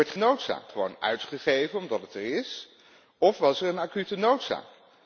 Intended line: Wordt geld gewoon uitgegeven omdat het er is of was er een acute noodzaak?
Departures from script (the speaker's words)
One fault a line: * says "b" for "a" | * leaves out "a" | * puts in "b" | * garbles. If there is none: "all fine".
* says "noodzaak" for "geld"